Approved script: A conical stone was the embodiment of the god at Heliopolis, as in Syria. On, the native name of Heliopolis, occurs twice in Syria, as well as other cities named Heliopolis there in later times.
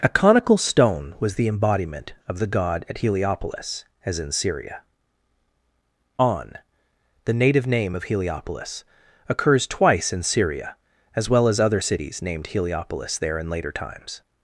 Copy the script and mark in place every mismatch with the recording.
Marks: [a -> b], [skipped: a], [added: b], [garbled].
A conical stone was the embodiment of the god at Heliopolis, as in Syria. On, the native name of Heliopolis, occurs twice in Syria, as well as other cities named Heliopolis there in later times.